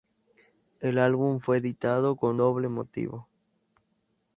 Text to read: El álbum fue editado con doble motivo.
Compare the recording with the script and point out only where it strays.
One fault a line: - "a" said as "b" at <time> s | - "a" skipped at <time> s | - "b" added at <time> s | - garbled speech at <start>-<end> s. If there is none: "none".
none